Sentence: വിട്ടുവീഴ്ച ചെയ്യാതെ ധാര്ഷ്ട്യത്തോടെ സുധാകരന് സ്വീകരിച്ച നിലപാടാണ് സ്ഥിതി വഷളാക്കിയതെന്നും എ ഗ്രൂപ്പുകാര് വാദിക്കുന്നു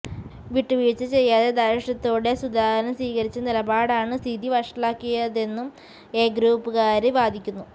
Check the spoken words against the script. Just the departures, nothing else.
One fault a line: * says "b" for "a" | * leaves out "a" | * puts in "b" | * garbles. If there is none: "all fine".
all fine